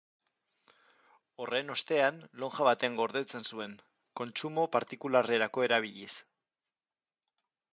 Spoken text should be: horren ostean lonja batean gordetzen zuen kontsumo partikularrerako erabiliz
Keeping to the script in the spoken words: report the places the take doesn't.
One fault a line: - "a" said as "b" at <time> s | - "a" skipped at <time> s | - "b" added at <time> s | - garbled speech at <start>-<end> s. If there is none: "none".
none